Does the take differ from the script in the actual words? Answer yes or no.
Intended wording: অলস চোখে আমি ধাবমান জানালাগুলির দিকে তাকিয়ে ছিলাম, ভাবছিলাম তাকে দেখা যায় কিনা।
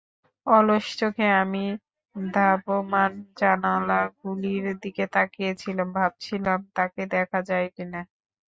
no